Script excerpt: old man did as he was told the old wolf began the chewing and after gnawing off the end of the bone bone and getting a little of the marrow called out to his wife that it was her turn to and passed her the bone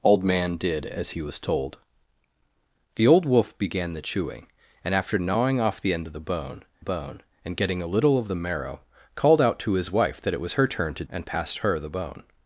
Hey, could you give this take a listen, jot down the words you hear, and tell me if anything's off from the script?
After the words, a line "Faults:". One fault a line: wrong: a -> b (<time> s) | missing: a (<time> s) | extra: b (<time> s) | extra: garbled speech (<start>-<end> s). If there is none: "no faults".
old man did as he was told the old wolf began the chewing and after gnawing off the end of the bone bone and getting a little of the marrow called out to his wife that it was her turn to and passed her the bone
Faults:
no faults